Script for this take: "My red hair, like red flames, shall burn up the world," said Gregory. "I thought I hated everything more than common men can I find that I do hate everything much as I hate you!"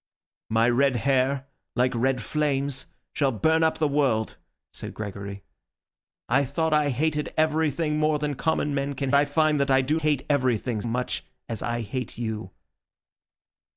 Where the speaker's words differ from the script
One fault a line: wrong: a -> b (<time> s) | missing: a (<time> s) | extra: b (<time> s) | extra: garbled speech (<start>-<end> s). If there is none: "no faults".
no faults